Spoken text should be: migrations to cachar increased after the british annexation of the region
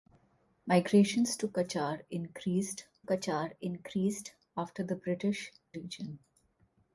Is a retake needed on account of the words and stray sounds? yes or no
yes